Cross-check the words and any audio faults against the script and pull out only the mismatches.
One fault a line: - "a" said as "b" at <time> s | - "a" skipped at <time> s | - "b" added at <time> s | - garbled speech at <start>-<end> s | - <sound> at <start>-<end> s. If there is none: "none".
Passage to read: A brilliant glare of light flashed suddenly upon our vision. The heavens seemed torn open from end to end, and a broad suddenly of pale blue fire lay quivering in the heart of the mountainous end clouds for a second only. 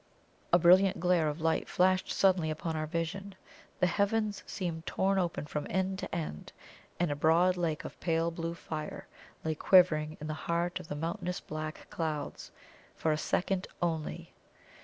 - "suddenly" said as "lake" at 7.5 s
- "end" said as "black" at 11.4 s